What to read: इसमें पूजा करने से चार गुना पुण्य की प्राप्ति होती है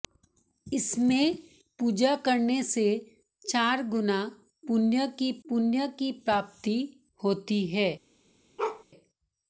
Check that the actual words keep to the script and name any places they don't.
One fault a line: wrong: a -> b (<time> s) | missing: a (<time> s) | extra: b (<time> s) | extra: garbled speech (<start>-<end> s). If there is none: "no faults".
extra: पुण्य की (5.4 s)